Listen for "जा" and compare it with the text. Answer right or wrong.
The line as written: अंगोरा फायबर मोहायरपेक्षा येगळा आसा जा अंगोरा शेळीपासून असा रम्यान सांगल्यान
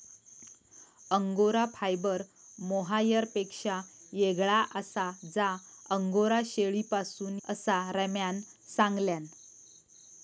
right